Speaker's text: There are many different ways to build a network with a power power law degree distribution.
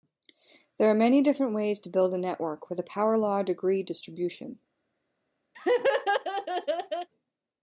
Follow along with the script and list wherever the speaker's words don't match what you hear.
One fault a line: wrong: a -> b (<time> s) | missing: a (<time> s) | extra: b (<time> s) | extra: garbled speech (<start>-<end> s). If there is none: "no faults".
missing: power (3.2 s)